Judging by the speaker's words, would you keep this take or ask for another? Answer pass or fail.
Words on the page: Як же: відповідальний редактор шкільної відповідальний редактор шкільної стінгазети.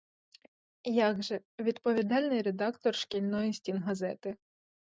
fail